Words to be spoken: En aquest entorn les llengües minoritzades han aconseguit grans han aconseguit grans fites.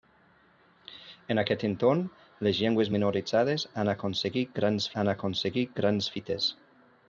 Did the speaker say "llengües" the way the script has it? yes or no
yes